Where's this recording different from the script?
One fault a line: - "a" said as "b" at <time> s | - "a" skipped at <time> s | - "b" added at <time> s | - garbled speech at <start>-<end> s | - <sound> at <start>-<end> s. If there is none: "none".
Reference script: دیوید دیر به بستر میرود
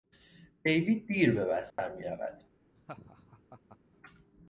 - dropout at 1.7-1.8 s
- laugh at 2.8-3.8 s